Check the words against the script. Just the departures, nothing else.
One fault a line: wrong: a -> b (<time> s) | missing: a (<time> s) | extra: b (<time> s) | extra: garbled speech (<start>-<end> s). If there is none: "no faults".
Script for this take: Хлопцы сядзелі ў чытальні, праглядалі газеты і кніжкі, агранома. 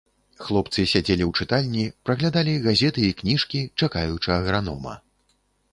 extra: чакаючы (3.8 s)